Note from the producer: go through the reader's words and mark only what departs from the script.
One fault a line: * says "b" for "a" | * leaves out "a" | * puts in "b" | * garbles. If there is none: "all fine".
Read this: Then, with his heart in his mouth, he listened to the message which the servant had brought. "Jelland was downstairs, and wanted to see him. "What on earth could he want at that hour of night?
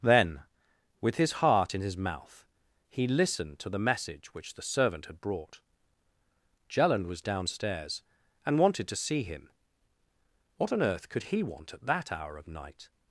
all fine